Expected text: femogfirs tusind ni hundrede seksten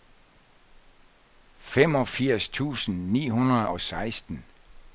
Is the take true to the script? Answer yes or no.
no